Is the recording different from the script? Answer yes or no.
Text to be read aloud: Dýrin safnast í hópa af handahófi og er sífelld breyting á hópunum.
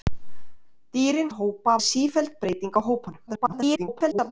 yes